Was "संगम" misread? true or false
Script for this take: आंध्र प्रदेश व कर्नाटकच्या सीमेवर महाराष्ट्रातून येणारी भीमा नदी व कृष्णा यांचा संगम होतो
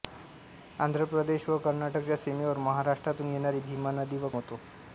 true